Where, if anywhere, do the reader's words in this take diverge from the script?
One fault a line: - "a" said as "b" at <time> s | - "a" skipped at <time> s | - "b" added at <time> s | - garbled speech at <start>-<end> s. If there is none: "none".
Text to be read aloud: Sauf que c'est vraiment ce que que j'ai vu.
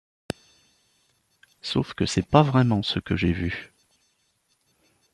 - "pas" added at 2.3 s
- "que" skipped at 3.1 s